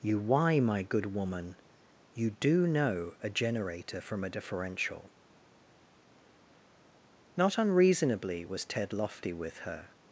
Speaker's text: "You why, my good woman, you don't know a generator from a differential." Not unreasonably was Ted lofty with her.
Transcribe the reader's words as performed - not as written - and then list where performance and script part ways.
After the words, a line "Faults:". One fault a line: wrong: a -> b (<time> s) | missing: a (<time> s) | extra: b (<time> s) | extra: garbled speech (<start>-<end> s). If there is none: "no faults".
"You why, my good woman, you do know a generator from a differential." Not unreasonably was Ted lofty with her.
Faults:
wrong: don't -> do (2.3 s)